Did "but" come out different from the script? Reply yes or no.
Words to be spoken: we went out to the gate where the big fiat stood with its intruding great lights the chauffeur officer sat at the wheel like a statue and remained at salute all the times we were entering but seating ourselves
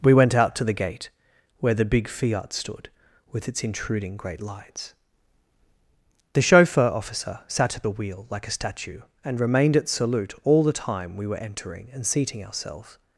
yes